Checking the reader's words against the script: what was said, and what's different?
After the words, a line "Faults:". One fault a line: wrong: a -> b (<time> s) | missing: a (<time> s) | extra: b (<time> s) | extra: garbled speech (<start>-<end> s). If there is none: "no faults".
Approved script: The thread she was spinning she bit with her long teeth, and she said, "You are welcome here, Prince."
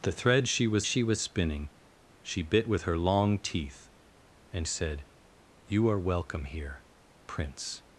The thread she was she was spinning she bit with her long teeth, and said, "You are welcome here, Prince."
Faults:
extra: she was (0.8 s)
missing: she (4.7 s)